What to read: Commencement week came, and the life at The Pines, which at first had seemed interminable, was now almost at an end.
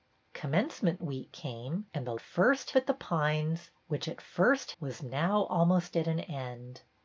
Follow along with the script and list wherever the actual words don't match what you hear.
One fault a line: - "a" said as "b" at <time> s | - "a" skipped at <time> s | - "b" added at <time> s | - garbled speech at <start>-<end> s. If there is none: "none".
- "life" said as "first" at 2.2 s
- "had seemed interminable" skipped at 4.7 s